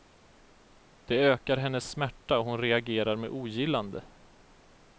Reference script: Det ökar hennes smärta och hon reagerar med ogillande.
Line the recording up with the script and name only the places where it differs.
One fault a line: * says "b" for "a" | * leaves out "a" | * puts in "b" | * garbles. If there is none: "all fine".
all fine